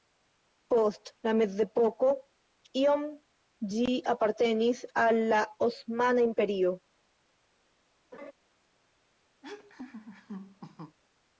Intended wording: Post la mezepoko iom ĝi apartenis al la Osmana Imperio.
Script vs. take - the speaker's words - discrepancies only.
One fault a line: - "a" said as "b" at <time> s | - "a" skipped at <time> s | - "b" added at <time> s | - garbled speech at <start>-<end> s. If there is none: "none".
none